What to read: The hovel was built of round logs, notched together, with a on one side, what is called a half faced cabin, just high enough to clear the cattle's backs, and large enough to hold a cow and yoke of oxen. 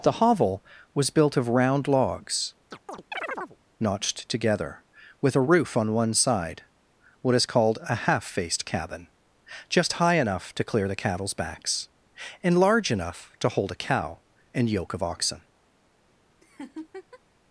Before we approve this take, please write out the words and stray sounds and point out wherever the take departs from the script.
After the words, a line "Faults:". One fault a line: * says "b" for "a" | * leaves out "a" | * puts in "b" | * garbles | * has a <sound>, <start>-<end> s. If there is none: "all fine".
The hovel was built of round logs, notched together, with a roof on one side, what is called a half faced cabin, just high enough to clear the cattle's backs, and large enough to hold a cow and yoke of oxen.
Faults:
* has a chirp, 2.7-3.6 s
* puts in "roof"
* has a laugh, 16.4-17.2 s